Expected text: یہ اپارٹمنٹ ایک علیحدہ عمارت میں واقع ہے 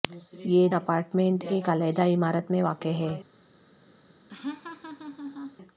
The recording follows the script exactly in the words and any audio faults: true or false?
false